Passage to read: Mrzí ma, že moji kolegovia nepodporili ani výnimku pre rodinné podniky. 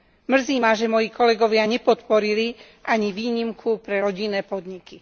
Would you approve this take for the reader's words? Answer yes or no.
yes